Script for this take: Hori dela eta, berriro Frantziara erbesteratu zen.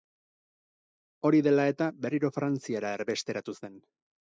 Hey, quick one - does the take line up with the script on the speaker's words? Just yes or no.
yes